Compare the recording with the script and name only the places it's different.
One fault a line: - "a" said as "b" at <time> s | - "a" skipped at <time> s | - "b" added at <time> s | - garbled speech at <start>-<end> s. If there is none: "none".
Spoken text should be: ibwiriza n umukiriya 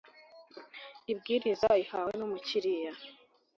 - "ihawe" added at 1.8 s